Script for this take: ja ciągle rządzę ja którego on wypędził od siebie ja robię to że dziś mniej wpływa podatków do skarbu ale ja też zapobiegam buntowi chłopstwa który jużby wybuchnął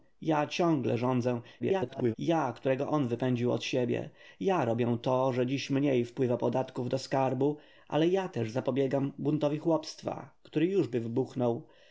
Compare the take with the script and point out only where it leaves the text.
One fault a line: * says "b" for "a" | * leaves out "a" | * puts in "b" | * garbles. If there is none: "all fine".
* garbles